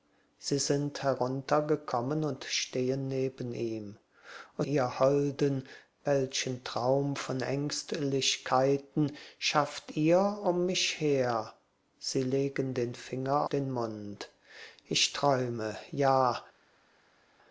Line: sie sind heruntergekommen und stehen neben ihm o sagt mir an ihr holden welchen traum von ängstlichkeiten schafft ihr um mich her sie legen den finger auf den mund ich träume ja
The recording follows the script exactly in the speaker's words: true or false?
false